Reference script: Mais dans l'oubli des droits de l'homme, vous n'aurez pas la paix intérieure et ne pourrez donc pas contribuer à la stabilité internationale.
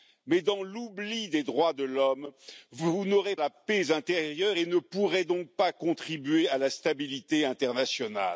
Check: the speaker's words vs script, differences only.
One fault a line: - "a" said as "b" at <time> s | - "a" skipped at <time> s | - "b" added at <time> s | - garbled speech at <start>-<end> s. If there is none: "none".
- "pas" skipped at 3.4 s